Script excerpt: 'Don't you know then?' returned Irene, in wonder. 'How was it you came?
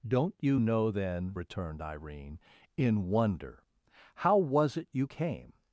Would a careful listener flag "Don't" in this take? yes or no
no